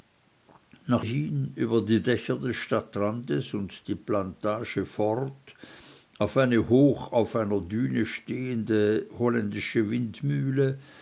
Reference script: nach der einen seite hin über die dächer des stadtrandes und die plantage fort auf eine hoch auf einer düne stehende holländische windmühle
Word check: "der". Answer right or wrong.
wrong